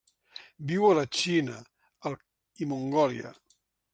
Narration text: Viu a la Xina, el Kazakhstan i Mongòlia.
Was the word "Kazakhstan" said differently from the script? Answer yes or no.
yes